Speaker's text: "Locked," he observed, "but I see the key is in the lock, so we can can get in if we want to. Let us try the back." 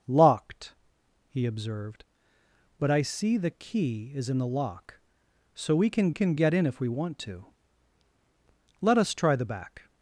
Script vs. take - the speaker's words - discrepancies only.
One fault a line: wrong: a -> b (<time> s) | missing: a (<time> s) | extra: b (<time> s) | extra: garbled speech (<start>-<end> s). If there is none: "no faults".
no faults